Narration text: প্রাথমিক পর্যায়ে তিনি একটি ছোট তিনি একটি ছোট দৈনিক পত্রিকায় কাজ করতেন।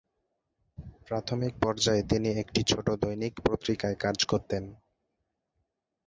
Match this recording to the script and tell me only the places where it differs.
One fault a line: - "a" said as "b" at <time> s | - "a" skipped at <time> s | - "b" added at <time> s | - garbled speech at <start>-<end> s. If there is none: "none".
- "তিনি একটি ছোট" skipped at 2.9 s